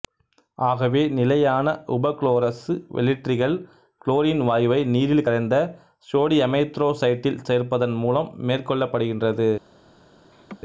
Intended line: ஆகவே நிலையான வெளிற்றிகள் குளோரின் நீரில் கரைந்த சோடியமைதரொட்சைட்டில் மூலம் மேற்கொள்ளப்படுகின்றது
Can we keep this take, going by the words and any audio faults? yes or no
no